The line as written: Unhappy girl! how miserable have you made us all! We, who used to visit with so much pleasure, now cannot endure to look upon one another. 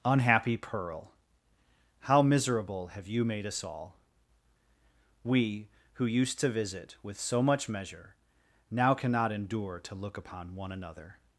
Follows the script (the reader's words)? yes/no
no